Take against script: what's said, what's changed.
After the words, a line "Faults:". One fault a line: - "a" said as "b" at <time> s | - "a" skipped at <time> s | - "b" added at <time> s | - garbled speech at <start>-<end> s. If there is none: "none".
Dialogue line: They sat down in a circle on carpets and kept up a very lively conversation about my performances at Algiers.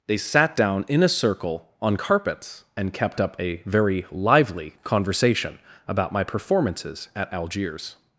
They sat down in a circle on carpets and kept up a very lively conversation about my performances at Algiers.
Faults:
none